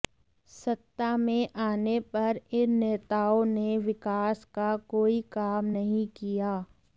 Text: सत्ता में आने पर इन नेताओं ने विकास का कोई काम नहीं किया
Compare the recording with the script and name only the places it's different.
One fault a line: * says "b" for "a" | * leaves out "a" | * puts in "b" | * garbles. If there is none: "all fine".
all fine